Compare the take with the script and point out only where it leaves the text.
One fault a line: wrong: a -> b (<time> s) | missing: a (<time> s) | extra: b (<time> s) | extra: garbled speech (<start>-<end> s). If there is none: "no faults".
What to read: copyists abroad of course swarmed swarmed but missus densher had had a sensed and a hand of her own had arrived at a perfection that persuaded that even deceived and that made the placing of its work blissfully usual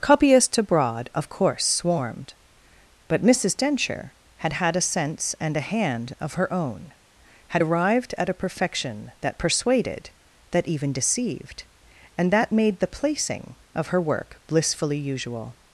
missing: swarmed (2.3 s)
wrong: sensed -> sense (4.8 s)
wrong: its -> her (13.9 s)